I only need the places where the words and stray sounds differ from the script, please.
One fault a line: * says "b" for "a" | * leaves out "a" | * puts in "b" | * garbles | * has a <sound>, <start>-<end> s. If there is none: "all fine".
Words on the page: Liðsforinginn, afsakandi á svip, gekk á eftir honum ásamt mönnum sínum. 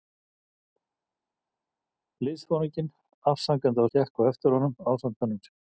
* leaves out "svip"